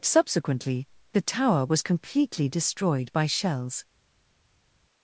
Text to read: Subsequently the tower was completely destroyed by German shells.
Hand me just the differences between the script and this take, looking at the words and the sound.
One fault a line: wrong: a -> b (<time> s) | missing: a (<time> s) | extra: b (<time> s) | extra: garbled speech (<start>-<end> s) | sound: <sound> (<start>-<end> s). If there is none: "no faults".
missing: German (3.3 s)